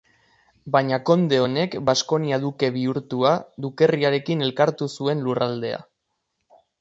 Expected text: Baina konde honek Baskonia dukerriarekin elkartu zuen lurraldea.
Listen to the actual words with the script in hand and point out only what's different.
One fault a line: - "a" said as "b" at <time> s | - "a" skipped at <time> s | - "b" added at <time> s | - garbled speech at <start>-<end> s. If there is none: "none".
- "duke bihurtua" added at 2.4 s